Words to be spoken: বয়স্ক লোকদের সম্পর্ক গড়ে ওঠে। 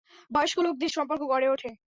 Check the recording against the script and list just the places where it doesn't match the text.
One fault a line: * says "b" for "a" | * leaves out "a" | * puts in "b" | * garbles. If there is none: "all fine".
all fine